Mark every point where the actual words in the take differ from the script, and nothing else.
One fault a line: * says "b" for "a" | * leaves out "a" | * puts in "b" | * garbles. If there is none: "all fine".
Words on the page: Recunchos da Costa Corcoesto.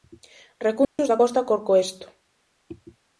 all fine